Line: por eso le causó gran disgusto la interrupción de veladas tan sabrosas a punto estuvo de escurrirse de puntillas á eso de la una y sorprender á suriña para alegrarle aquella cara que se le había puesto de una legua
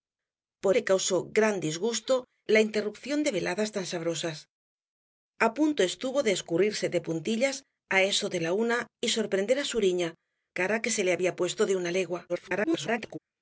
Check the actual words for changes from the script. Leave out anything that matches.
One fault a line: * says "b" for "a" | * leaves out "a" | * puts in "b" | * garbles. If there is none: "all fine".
* leaves out "eso"
* leaves out "para alegrarle aquella"
* garbles